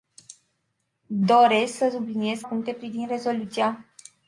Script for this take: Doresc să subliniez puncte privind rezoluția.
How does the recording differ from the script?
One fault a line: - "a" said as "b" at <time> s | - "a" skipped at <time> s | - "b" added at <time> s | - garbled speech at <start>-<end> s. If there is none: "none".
none